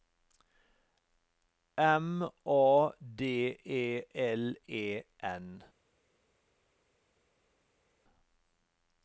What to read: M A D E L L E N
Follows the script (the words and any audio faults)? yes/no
no